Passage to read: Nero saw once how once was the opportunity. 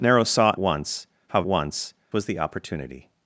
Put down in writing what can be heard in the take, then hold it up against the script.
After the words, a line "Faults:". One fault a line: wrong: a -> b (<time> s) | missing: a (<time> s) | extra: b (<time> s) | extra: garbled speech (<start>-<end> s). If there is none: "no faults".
Nero saw once how once was the opportunity.
Faults:
no faults